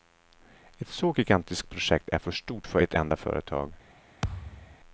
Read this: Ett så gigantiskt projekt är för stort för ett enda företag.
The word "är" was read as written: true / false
true